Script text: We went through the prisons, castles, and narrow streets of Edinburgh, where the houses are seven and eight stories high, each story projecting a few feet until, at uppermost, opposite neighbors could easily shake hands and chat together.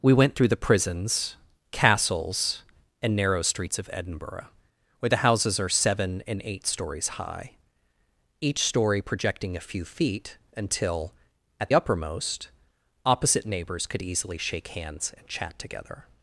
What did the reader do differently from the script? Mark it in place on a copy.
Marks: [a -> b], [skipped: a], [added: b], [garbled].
We went through the prisons, castles, and narrow streets of Edinburgh, where the houses are seven and eight stories high, each story projecting a few feet until, at uppermost, opposite neighbors could easily shake hands and chat together.